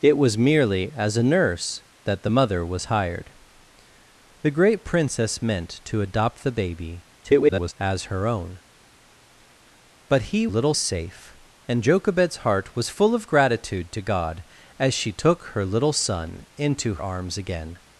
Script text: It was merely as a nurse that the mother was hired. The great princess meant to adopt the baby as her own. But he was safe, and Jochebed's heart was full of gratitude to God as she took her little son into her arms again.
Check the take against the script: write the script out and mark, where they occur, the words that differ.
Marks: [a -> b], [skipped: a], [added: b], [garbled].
It was merely as a nurse that the mother was hired. The great princess meant to adopt the baby [garbled] as her own. But he [was -> little] safe, and Jochebed's heart was full of gratitude to God as she took her little son into [skipped: her] arms again.